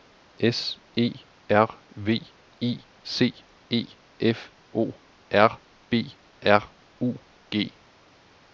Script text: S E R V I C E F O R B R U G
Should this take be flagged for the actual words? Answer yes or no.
no